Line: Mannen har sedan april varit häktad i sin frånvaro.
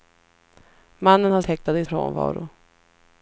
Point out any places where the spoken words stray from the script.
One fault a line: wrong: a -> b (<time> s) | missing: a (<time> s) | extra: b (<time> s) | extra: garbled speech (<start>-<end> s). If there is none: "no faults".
missing: sedan april varit (1.4 s)
missing: sin (1.9 s)